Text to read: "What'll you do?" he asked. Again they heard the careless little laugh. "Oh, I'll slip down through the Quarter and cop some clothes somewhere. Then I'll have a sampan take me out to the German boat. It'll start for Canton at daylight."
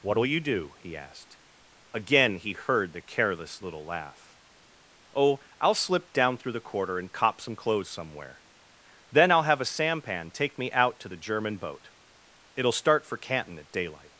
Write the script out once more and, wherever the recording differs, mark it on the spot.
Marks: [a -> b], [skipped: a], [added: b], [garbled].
"What'll you do?" he asked. Again [they -> he] heard the careless little laugh. "Oh, I'll slip down through the Quarter and cop some clothes somewhere. Then I'll have a sampan take me out to the German boat. It'll start for Canton at daylight."